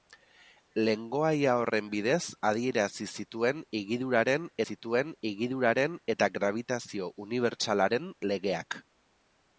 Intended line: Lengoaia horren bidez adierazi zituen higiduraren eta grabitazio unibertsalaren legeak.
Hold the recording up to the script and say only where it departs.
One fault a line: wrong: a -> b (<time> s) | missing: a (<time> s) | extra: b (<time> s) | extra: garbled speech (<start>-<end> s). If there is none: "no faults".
extra: zituen higiduraren (4.7 s)